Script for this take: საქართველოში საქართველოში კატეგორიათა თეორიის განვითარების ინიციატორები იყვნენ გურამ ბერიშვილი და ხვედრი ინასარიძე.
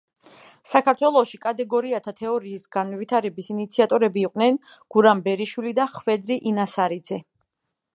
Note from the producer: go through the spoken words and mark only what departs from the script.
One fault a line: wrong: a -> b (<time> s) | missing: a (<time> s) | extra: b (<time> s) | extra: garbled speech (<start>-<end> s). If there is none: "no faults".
missing: საქართველოში (1.4 s)